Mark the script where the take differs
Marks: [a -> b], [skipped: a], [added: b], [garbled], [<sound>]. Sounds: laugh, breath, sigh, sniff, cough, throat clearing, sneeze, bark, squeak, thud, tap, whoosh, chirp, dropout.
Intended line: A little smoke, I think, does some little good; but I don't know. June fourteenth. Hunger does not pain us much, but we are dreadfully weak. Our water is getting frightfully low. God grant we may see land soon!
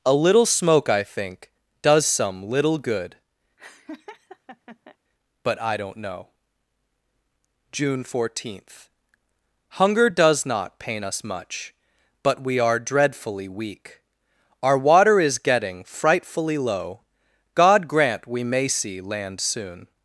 A little smoke, I think, does some little good; [laugh] but I don't know. June fourteenth. Hunger does not pain us much, but we are dreadfully weak. Our water is getting frightfully low. God grant we may see land soon!